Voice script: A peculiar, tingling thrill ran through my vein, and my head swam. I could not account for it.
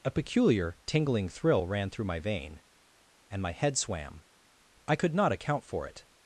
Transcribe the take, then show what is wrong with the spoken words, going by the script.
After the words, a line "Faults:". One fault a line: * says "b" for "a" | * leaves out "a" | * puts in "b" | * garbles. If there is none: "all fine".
A peculiar, tingling thrill ran through my vein, and my head swam. I could not account for it.
Faults:
all fine